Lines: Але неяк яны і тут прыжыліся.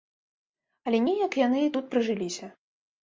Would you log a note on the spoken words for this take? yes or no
no